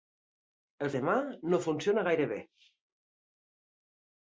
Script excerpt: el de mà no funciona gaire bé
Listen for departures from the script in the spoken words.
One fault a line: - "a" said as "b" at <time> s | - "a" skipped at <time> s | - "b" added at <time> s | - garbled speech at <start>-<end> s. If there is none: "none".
none